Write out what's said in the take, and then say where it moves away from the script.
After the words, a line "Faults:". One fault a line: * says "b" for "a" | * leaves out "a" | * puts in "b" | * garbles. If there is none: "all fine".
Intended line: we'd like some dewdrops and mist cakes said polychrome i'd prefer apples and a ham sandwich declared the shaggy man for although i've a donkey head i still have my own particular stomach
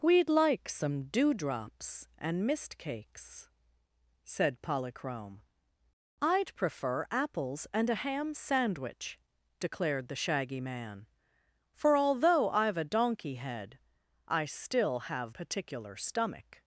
we'd like some dewdrops and mist cakes said polychrome i'd prefer apples and a ham sandwich declared the shaggy man for although i've a donkey head i still have particular stomach
Faults:
* leaves out "my own"